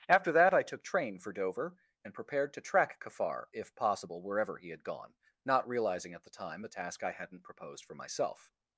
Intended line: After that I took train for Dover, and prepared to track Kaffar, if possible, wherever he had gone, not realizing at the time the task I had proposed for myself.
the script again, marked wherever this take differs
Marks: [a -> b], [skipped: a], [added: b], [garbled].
After that I took train for Dover, and prepared to track Kaffar, if possible, wherever he had gone, not realizing at the time the task I [had -> hadn't] proposed for myself.